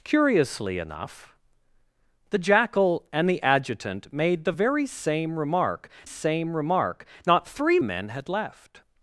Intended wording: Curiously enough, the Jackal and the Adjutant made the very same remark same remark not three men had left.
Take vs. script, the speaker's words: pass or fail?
pass